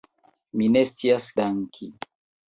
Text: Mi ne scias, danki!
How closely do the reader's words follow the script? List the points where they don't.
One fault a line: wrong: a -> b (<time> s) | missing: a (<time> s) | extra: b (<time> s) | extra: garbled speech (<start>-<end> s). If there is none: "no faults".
no faults